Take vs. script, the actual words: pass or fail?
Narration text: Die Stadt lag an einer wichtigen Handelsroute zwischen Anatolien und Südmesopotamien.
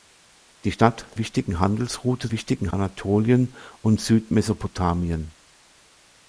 fail